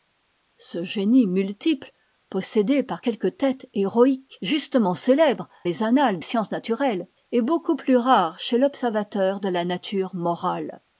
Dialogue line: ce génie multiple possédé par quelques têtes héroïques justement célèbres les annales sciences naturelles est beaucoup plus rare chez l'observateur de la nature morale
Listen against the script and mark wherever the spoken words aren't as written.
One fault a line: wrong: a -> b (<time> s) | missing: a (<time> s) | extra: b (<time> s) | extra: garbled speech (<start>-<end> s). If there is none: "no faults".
no faults